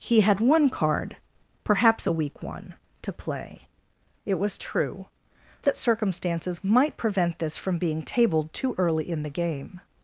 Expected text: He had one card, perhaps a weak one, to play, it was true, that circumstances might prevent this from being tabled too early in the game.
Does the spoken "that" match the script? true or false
true